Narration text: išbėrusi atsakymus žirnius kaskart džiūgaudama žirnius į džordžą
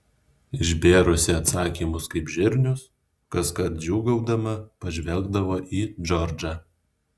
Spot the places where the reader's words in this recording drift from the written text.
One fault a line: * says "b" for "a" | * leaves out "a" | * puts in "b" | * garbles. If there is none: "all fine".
* puts in "kaip"
* says "pažvelgdavo" for "žirnius"